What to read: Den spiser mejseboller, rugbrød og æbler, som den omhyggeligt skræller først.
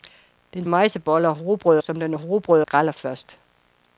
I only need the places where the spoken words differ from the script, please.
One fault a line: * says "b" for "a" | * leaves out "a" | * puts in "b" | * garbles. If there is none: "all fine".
* leaves out "spiser"
* leaves out "og æbler"
* says "rugbrød" for "omhyggeligt"